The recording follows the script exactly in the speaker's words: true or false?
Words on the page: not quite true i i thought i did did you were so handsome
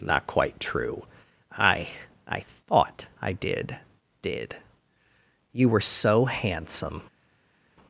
true